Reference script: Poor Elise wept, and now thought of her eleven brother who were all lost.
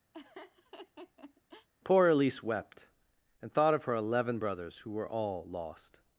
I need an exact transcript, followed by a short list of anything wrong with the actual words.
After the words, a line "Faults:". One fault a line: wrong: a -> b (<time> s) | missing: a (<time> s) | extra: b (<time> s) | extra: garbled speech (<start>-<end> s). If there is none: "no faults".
Poor Elise wept, and thought of her eleven brothers who were all lost.
Faults:
missing: now (3.5 s)
wrong: brother -> brothers (4.4 s)